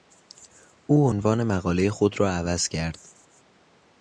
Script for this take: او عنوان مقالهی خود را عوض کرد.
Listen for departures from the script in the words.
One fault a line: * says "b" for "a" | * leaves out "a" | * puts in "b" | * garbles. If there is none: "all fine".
all fine